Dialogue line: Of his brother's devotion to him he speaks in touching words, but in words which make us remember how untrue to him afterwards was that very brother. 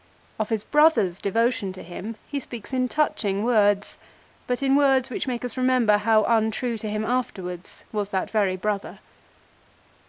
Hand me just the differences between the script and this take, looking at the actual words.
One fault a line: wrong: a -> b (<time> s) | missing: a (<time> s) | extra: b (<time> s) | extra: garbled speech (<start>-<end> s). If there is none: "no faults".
no faults